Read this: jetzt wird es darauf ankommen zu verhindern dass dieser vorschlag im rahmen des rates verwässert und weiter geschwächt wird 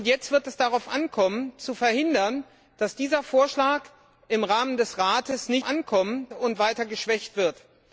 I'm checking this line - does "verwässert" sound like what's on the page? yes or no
no